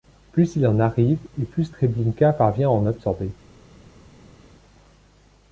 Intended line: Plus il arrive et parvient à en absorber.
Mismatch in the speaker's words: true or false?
true